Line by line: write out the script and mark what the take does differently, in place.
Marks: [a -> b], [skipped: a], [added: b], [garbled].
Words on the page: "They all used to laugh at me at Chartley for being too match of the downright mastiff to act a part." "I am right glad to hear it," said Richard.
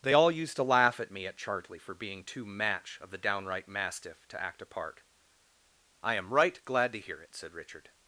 "They all used to laugh at me at Chartley for being too match of the downright mastiff to act a part." "I am right glad to hear it," said Richard.